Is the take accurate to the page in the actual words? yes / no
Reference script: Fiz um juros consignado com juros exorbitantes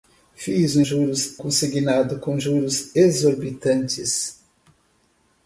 yes